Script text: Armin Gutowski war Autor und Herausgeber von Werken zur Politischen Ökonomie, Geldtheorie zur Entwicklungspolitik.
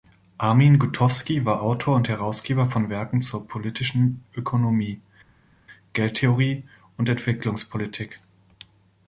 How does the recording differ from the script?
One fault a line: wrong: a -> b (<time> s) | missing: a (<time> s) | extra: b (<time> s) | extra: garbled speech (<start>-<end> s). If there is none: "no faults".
wrong: zur -> und (7.0 s)